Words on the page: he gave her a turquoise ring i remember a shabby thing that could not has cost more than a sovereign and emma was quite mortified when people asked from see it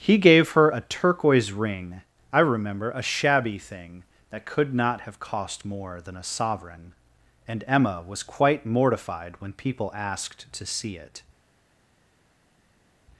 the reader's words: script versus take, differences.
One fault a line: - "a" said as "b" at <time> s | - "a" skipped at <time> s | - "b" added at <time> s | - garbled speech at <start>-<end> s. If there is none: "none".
- "has" said as "have" at 5.0 s
- "from" said as "to" at 10.5 s